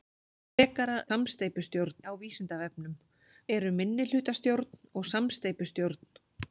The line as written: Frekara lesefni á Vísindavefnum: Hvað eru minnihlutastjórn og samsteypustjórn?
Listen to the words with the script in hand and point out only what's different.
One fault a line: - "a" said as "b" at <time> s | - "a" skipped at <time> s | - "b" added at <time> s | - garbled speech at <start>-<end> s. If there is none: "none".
- "lesefni" said as "samsteypustjórn" at 1.1 s
- "Hvað" skipped at 2.9 s